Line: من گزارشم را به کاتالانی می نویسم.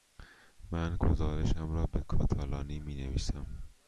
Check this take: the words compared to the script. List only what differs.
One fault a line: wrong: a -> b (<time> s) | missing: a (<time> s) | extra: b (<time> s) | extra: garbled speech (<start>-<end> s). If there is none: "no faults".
no faults